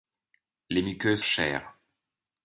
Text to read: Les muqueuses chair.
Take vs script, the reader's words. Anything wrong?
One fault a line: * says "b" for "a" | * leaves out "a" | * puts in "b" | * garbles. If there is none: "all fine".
all fine